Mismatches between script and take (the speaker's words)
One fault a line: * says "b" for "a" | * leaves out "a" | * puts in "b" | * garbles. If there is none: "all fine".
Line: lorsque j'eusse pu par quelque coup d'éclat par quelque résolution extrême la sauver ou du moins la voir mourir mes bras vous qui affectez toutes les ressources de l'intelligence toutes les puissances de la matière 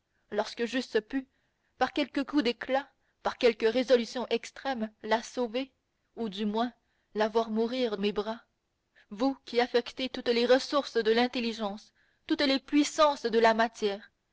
all fine